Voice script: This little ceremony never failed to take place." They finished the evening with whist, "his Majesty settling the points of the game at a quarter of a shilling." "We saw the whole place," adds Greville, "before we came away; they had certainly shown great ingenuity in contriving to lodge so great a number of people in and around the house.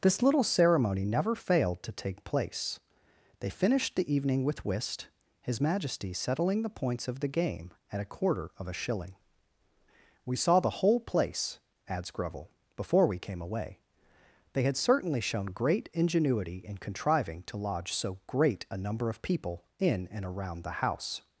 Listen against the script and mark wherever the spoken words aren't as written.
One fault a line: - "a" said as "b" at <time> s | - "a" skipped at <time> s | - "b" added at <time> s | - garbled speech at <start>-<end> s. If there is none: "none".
none